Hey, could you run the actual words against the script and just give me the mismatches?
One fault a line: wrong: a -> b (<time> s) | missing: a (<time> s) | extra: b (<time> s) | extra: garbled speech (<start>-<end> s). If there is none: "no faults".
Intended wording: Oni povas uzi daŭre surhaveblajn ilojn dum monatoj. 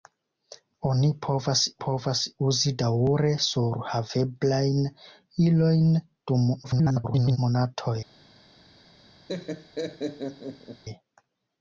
extra: povas (1.8 s)
extra: garbled speech (6.6-7.4 s)